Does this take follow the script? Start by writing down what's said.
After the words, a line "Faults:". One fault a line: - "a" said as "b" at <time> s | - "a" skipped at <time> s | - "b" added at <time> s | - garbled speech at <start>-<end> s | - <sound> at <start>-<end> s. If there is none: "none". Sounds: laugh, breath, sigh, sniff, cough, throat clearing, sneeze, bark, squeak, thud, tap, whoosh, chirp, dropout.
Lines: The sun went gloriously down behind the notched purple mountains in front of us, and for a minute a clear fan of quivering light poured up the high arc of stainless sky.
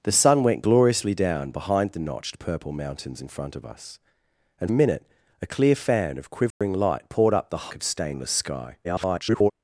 The sun went gloriously down behind the notched purple mountains in front of us, and a minute a clear fan of quivering light poured up the of stainless sky. [garbled]
Faults:
- "for" skipped at 4.7 s
- dropout at 6.5-6.6 s
- "high arc" skipped at 7.7 s
- garbled speech at 8.8-9.5 s